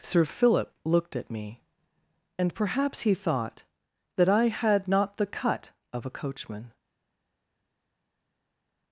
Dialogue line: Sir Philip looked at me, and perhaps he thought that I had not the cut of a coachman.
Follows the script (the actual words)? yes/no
yes